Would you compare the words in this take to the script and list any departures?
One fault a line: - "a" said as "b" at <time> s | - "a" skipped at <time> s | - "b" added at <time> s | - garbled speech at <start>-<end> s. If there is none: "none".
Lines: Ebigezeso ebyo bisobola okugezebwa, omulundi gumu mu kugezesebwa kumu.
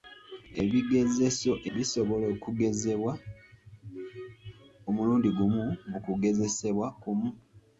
- "ebyo" skipped at 1.5 s